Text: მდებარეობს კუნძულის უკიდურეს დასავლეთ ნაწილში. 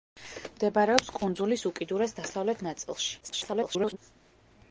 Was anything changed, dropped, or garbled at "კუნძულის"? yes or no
no